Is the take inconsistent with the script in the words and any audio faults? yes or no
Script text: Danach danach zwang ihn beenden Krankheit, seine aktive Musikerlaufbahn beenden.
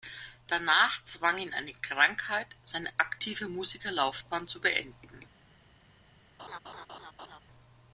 yes